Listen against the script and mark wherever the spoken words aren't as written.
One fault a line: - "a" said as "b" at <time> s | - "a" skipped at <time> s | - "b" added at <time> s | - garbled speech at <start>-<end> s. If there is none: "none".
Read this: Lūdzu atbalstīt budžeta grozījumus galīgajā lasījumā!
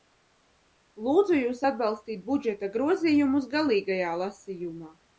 - "jūs" added at 1.4 s